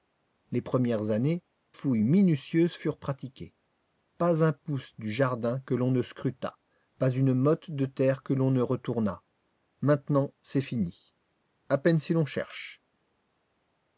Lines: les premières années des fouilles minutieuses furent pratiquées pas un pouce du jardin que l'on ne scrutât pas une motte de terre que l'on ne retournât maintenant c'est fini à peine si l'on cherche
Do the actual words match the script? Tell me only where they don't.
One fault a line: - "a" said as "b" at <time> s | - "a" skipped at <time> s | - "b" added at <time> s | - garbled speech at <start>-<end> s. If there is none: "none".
- "des" skipped at 1.4 s